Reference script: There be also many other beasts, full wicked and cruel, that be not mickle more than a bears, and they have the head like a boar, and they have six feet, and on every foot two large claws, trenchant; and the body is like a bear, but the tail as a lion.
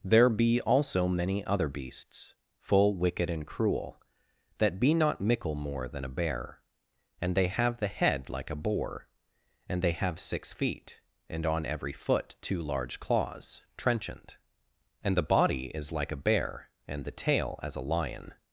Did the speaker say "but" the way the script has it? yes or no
no